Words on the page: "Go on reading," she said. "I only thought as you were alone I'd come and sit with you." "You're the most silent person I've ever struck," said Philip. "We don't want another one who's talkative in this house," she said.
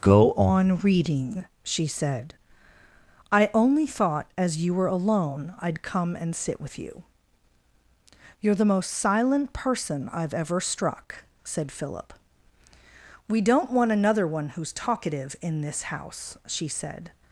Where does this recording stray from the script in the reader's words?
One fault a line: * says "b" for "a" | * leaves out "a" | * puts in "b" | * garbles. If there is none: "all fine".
all fine